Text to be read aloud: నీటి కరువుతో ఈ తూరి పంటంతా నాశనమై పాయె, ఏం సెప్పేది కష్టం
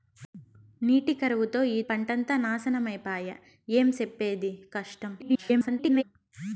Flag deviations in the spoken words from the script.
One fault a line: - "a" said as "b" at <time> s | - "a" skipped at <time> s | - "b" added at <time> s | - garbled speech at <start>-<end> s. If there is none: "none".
- "తూరి" skipped at 1.8 s
- garbled speech at 5.2-6.0 s